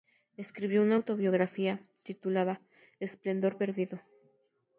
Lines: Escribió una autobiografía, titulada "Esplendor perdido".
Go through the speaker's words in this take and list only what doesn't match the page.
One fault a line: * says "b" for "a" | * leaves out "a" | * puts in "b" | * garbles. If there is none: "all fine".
all fine